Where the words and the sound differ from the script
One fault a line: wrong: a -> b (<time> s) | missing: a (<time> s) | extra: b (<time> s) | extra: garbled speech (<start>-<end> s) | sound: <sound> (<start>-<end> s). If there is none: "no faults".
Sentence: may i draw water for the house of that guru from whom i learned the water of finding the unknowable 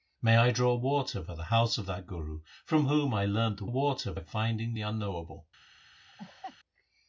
sound: laugh (6.0-6.6 s)